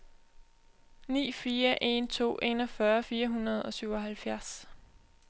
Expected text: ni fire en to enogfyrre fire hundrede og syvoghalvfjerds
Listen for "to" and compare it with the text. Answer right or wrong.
right